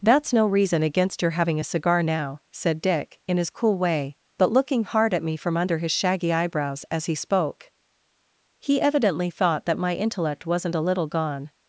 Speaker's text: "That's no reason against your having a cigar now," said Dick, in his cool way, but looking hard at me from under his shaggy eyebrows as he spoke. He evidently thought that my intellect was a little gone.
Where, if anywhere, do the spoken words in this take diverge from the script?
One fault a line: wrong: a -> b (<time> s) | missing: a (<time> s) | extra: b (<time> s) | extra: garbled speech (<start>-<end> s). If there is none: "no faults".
wrong: was -> wasn't (10.5 s)